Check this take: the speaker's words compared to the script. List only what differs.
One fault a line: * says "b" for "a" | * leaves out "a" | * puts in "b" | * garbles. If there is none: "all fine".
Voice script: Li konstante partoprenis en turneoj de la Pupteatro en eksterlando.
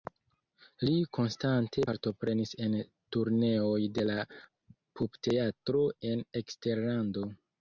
all fine